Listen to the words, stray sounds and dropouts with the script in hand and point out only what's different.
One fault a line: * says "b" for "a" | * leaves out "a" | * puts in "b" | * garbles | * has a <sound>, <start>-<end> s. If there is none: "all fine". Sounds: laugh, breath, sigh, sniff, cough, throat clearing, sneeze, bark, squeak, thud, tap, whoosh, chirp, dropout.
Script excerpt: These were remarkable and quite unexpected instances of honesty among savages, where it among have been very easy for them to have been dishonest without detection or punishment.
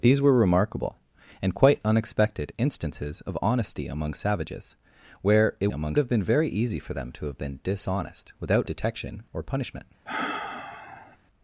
* has a sigh, 10.1-11.2 s